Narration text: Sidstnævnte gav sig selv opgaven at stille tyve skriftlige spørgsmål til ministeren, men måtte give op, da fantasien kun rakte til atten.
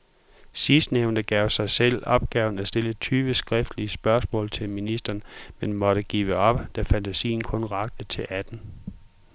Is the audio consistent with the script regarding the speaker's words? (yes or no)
yes